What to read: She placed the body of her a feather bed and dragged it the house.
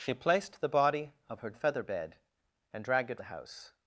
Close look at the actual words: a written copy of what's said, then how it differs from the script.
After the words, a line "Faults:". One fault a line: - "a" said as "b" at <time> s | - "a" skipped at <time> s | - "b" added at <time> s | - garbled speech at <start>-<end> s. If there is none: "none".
She placed the body of her a feather bed and dragged it the house.
Faults:
none